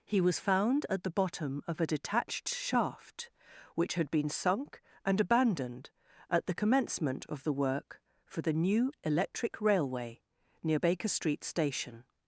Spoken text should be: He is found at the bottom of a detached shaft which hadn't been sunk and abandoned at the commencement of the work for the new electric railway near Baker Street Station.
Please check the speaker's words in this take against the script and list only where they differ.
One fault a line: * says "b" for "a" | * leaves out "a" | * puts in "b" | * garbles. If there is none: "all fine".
* says "was" for "is"
* says "had" for "hadn't"